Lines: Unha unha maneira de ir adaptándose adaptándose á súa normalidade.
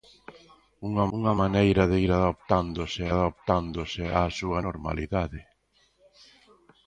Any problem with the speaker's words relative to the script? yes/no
no